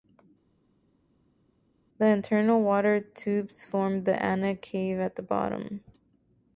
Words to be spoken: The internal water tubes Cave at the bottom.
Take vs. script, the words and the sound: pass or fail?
fail